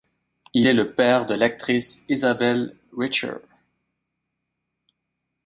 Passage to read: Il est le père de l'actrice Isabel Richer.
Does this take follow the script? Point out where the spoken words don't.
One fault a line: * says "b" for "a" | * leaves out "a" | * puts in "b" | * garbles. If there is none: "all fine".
all fine